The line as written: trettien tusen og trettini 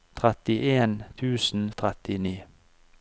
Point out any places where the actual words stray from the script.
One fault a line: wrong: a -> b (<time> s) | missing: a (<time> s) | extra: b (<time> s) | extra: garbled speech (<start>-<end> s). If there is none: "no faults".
no faults